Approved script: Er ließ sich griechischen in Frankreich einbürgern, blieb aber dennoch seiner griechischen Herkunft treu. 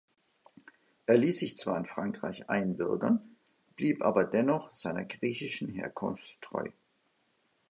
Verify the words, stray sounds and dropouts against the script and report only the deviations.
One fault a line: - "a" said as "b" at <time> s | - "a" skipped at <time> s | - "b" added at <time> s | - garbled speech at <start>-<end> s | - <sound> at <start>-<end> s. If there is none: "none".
- "griechischen" said as "zwar" at 1.6 s